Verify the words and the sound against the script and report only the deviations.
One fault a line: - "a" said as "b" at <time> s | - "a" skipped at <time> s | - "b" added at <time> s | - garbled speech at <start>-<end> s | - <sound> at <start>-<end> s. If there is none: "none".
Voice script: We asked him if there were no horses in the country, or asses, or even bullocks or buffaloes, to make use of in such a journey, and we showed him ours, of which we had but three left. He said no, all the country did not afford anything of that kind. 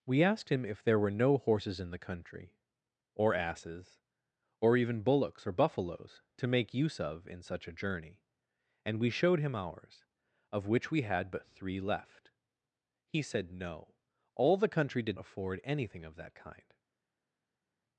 - "not" skipped at 15.2 s